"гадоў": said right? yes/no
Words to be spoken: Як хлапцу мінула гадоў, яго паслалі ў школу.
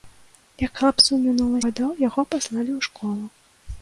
yes